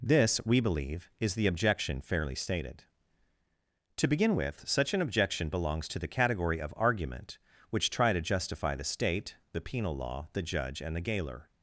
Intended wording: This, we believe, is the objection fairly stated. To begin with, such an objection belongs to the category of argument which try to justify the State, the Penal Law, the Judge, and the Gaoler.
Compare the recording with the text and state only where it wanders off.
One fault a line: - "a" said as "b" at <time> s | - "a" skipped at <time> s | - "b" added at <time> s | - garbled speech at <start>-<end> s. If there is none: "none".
none